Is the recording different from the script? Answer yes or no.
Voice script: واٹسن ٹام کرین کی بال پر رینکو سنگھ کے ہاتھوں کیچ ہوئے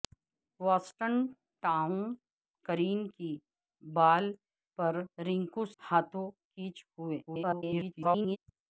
yes